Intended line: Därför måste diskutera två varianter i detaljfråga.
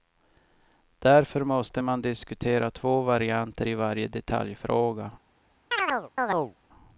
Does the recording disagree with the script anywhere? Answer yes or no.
yes